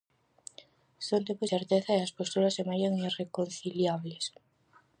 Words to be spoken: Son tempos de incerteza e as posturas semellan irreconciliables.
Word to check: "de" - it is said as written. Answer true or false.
false